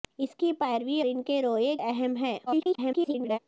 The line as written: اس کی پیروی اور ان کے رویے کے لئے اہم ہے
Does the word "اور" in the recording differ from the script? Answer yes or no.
yes